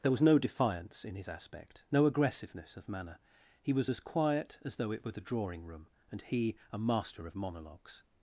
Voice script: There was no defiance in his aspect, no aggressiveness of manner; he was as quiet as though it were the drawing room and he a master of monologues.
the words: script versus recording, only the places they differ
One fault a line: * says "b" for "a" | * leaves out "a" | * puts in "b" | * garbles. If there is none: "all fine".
all fine